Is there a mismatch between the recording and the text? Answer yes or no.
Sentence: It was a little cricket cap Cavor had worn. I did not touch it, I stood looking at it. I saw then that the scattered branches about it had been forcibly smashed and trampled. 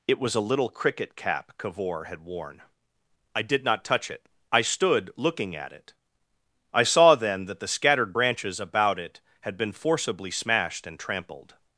no